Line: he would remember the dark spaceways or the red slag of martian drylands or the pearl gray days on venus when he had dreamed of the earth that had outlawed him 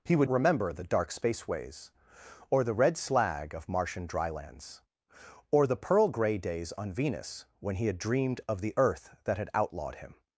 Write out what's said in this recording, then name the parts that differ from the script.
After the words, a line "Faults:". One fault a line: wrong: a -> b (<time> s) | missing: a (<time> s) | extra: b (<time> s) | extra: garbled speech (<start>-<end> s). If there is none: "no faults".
he would remember the dark spaceways or the red slag of martian drylands or the pearl gray days on venus when he had dreamed of the earth that had outlawed him
Faults:
no faults